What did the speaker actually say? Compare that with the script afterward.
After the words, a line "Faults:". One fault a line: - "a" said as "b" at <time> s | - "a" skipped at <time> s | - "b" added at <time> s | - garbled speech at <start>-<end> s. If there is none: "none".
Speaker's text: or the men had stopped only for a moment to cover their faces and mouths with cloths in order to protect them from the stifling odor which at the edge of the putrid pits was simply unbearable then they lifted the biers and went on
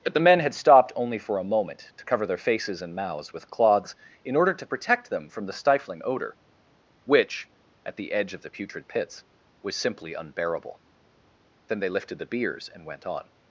but the men had stopped only for a moment to cover their faces and mouths with cloths in order to protect them from the stifling odor which at the edge of the putrid pits was simply unbearable then they lifted the biers and went on
Faults:
- "or" said as "but" at 0.0 s